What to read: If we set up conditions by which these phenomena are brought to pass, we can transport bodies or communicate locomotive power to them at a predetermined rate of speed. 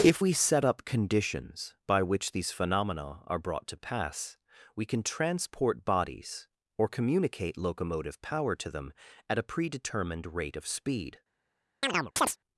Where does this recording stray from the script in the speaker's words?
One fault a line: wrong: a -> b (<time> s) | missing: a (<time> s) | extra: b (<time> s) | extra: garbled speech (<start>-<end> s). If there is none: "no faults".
no faults